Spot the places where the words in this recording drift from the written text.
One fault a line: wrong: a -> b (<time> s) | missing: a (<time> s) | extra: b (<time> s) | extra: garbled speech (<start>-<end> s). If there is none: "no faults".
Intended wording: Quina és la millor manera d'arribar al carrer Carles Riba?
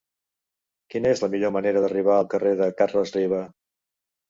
extra: de (2.6 s)